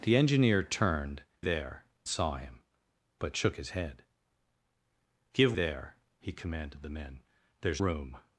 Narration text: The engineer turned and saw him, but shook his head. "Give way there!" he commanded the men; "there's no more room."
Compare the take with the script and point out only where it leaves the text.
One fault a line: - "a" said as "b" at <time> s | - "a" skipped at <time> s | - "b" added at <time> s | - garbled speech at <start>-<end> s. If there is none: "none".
- "and" said as "there" at 1.4 s
- "way" skipped at 5.6 s
- "no more" skipped at 7.8 s